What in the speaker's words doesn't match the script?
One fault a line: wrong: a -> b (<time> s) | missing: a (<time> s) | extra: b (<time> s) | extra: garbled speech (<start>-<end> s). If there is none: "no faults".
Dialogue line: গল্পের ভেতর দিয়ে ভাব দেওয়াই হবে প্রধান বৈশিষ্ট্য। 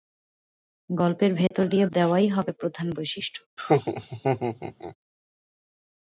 missing: ভাব (1.9 s)